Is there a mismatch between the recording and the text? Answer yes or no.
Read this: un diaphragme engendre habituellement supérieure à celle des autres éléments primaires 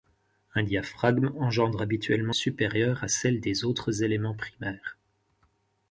no